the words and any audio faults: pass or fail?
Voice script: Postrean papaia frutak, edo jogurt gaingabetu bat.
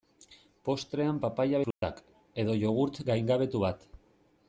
fail